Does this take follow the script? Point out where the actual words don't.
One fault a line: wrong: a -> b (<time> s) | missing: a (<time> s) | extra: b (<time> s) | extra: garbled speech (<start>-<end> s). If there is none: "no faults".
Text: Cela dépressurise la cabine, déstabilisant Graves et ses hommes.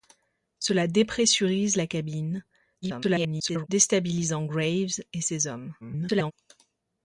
extra: garbled speech (2.8-3.7 s)
extra: garbled speech (5.8-6.3 s)